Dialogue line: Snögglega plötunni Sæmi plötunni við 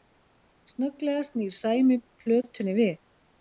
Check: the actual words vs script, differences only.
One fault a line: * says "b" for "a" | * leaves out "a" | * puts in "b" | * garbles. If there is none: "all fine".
* says "snýr" for "plötunni"